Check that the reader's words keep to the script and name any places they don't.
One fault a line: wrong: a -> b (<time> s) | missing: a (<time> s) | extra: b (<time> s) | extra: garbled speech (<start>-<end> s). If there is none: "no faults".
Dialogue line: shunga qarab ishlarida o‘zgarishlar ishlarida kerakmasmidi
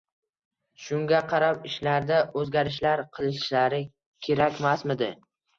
wrong: ishlarida -> qilishlari (3.2 s)